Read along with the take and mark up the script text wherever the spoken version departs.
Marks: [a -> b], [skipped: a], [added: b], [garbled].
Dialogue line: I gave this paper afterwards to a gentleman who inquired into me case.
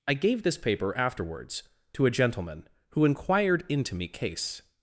I gave this paper afterwards to a gentleman who inquired into me case.